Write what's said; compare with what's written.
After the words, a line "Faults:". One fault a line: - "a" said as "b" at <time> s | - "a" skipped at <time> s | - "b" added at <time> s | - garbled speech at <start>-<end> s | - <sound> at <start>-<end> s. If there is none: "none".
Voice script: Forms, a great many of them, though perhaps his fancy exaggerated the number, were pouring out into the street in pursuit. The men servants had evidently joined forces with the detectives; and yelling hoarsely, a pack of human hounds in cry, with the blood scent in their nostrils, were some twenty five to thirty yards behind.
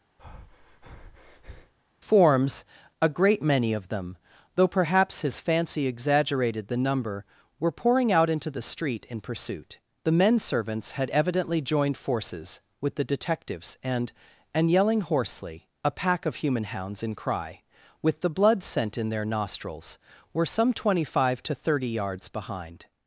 Forms, a great many of them, though perhaps his fancy exaggerated the number, were pouring out into the street in pursuit. The men servants had evidently joined forces with the detectives; and and yelling hoarsely, a pack of human hounds in cry, with the blood scent in their nostrils, were some twenty five to thirty yards behind.
Faults:
- breath at 0.2-1.7 s
- "and" added at 14.5 s